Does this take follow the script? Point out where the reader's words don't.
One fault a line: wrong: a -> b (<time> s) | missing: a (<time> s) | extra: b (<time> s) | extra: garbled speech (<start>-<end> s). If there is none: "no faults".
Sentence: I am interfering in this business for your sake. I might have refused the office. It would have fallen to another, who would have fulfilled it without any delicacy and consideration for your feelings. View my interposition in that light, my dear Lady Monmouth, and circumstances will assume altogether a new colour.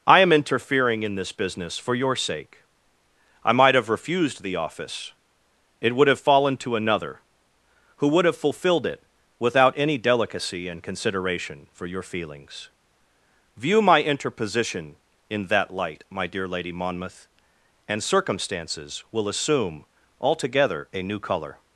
no faults